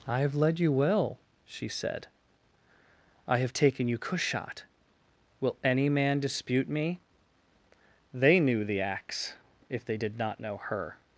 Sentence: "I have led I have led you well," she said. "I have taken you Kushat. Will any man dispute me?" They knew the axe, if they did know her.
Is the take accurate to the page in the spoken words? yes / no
no